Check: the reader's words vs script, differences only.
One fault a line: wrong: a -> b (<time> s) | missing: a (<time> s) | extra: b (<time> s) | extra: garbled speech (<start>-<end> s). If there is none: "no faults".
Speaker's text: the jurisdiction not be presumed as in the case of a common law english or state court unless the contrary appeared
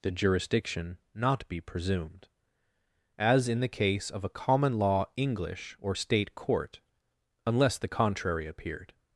no faults